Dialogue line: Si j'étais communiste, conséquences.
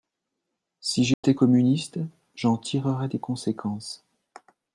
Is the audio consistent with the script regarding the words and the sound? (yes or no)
no